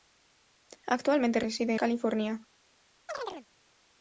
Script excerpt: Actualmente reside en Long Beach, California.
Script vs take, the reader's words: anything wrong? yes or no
yes